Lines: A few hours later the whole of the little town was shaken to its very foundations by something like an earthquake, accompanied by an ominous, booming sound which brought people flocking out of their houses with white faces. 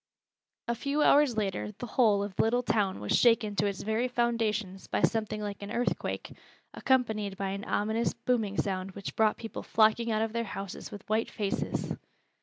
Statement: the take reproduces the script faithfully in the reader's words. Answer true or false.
true